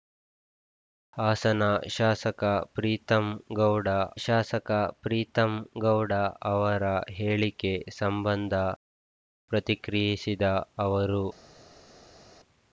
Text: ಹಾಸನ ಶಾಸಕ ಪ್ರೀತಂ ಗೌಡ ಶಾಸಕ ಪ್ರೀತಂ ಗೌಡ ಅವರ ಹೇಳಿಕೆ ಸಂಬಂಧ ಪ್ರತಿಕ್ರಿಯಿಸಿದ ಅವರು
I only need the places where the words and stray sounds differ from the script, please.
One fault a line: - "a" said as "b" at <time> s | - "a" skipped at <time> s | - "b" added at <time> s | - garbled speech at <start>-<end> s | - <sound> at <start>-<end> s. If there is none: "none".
none